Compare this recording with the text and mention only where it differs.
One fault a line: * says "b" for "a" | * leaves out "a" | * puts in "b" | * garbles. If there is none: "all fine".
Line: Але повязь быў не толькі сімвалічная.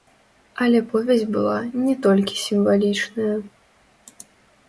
* says "была" for "быў"